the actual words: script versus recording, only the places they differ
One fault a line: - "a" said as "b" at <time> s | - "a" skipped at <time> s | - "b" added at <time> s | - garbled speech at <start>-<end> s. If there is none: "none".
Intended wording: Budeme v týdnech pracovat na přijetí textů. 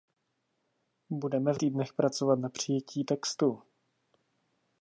none